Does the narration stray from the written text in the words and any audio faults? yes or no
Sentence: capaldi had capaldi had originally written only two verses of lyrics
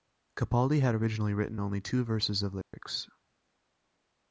yes